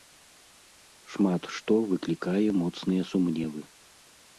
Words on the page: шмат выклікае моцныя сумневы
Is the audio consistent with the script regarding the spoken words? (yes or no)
no